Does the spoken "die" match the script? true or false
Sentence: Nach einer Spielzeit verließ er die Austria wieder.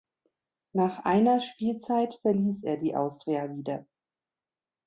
true